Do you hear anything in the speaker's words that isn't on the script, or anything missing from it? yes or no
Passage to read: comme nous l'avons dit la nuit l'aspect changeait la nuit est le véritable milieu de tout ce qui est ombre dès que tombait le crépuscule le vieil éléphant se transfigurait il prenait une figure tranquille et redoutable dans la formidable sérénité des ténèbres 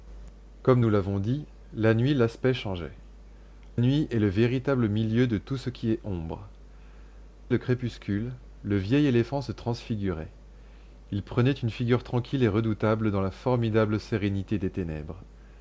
yes